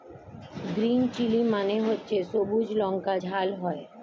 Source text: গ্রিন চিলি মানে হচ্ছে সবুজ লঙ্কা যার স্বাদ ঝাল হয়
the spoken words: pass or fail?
fail